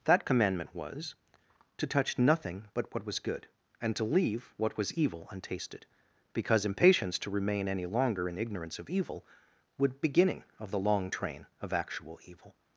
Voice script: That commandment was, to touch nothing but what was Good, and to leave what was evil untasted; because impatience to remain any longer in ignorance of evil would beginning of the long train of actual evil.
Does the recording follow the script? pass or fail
pass